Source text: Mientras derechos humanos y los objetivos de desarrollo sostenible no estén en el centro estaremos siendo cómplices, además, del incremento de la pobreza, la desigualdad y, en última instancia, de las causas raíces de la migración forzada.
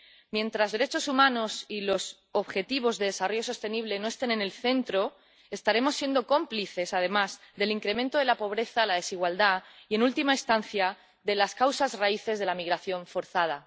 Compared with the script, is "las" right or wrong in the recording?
right